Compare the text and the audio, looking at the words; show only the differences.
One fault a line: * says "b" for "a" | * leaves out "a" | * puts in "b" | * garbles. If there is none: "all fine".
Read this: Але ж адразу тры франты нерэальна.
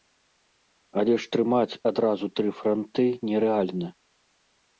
* puts in "трымаць"